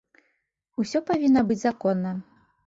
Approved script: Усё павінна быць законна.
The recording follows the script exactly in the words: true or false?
true